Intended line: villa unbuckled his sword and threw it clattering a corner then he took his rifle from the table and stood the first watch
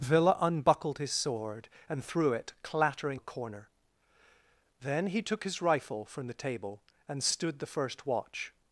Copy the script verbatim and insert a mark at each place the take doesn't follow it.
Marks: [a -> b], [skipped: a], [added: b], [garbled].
villa unbuckled his sword and threw it clattering a corner then he took his rifle from the table and stood the first watch